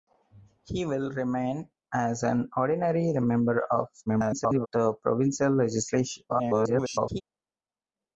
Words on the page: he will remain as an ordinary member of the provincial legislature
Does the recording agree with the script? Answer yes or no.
no